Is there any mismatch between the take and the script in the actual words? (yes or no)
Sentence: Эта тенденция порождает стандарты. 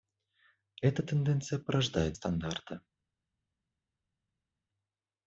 no